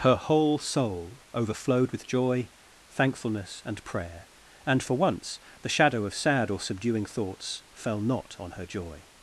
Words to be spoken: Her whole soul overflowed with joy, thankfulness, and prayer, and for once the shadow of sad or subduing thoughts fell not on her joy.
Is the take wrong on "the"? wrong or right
right